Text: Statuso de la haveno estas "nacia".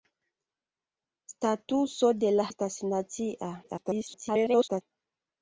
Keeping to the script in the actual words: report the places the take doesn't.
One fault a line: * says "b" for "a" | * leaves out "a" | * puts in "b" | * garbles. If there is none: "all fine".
* leaves out "haveno"
* garbles